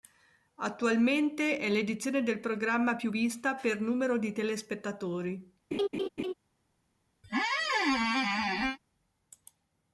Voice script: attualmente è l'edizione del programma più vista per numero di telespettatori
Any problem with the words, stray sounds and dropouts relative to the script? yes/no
yes